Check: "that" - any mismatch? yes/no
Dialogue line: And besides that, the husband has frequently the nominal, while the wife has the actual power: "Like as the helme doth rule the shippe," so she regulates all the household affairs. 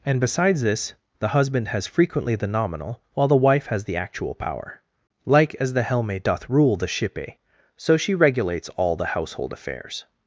yes